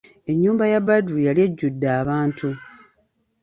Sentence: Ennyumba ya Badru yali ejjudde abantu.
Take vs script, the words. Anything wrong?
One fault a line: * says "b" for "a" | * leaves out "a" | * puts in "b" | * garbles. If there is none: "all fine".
all fine